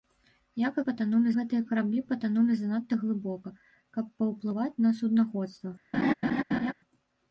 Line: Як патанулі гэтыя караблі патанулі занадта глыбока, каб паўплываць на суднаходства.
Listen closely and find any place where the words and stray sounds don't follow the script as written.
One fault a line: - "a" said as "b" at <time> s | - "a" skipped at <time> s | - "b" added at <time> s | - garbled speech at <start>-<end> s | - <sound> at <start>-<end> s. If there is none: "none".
- laugh at 5.9-6.7 s